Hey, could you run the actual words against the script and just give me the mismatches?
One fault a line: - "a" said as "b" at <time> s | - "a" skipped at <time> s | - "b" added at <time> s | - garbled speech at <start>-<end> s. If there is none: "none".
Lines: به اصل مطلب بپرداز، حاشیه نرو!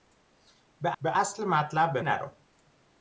- "به" added at 1.0 s
- "بپرداز حاشیه" skipped at 2.0 s